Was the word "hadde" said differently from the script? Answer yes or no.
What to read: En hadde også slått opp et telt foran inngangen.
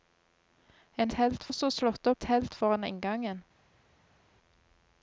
yes